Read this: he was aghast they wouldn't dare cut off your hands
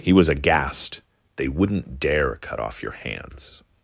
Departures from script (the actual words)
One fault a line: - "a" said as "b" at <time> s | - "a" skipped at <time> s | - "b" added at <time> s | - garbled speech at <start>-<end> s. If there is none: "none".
none